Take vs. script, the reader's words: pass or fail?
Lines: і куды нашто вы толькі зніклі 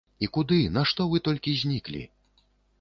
pass